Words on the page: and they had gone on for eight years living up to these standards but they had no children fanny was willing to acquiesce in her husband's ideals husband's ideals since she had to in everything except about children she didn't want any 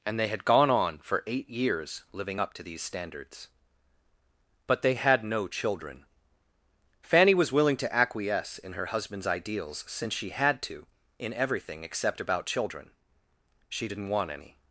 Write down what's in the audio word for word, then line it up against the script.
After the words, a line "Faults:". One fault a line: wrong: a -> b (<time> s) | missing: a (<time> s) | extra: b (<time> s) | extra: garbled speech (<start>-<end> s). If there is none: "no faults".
and they had gone on for eight years living up to these standards but they had no children fanny was willing to acquiesce in her husband's ideals since she had to in everything except about children she didn't want any
Faults:
missing: husband's ideals (9.8 s)